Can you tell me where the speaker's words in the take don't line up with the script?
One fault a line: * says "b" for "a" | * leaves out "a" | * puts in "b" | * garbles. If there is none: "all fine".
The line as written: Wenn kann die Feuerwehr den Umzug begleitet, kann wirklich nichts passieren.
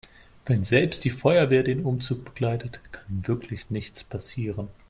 * says "selbst" for "kann"